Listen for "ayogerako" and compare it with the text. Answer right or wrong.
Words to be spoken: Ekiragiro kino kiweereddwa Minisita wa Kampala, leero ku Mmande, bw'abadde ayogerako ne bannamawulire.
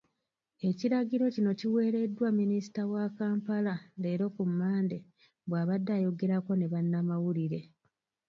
right